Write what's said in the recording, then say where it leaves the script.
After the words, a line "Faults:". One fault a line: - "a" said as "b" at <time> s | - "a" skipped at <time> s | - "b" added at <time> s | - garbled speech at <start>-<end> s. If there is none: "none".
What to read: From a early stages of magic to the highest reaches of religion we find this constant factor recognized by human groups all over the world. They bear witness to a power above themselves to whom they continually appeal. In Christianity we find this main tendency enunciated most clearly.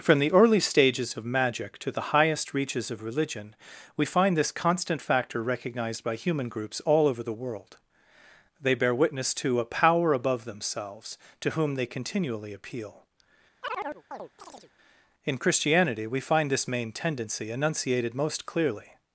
From the early stages of magic to the highest reaches of religion we find this constant factor recognized by human groups all over the world. They bear witness to a power above themselves to whom they continually appeal. In Christianity we find this main tendency enunciated most clearly.
Faults:
- "a" said as "the" at 0.2 s